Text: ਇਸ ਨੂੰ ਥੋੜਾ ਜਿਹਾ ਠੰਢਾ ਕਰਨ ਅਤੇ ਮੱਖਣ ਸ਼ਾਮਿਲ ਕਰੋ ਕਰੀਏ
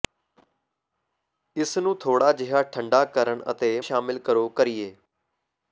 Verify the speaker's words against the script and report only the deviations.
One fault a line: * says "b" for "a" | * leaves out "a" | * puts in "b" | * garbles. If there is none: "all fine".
* leaves out "ਮੱਖਣ"